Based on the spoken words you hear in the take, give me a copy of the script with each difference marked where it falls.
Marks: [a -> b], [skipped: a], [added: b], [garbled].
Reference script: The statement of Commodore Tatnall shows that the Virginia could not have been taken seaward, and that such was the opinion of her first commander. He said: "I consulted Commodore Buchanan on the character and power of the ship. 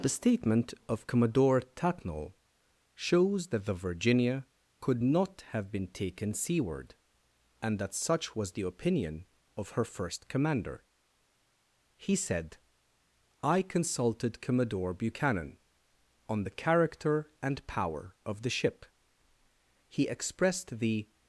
The statement of Commodore Tatnall shows that the Virginia could not have been taken seaward, and that such was the opinion of her first commander. He said: "I consulted Commodore Buchanan on the character and power of the ship. [added: He expressed the]